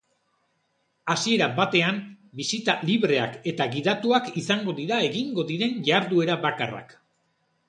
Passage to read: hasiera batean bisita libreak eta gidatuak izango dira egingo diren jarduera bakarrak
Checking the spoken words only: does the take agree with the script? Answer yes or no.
yes